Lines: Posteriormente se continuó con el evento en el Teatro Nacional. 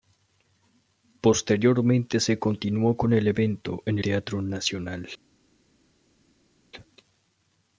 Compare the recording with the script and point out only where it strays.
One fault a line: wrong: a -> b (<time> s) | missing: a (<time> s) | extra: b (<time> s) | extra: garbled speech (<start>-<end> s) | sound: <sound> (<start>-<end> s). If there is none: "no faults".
missing: el (4.0 s)